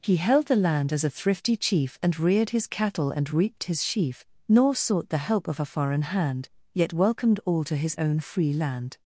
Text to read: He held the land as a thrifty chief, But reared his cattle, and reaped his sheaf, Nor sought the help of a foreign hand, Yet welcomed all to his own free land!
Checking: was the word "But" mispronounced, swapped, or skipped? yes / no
yes